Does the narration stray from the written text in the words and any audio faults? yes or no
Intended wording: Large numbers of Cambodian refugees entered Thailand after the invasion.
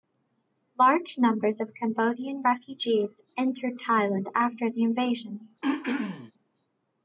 yes